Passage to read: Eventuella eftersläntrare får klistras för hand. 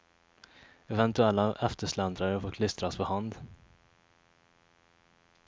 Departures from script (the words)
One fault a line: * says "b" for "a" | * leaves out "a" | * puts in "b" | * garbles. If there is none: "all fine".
all fine